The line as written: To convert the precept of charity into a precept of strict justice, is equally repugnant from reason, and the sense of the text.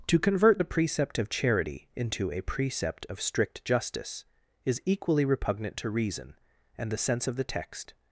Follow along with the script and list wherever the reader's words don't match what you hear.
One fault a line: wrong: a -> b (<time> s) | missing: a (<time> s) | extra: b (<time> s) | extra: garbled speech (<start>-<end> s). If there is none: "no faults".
wrong: from -> to (5.8 s)